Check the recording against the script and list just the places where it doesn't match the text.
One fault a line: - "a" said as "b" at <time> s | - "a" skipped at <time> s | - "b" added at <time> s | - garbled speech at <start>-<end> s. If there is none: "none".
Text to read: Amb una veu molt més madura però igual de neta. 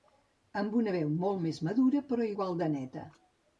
none